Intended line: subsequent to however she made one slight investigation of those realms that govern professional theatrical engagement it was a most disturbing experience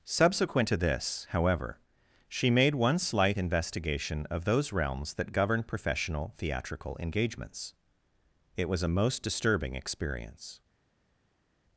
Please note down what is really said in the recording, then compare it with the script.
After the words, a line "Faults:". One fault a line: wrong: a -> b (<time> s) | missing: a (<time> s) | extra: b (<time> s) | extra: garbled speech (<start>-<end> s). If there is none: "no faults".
subsequent to this however she made one slight investigation of those realms that govern professional theatrical engagements it was a most disturbing experience
Faults:
extra: this (0.8 s)
wrong: engagement -> engagements (7.0 s)